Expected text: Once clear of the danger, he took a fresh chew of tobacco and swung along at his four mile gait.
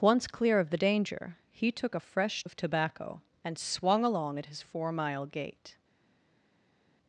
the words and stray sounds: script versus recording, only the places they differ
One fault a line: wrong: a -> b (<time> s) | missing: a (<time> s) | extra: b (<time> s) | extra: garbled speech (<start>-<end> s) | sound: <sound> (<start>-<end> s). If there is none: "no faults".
missing: chew (2.5 s)